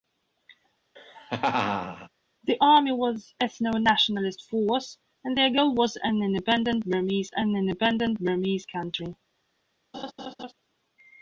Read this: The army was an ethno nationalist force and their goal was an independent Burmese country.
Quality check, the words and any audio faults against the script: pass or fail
fail